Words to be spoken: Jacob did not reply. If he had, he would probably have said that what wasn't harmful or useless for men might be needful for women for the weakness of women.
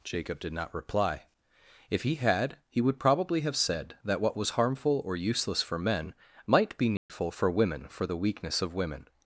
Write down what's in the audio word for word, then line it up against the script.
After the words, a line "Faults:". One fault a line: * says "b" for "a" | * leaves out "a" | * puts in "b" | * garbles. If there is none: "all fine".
Jacob did not reply. If he had, he would probably have said that what was harmful or useless for men might be needful for women for the weakness of women.
Faults:
* says "was" for "wasn't"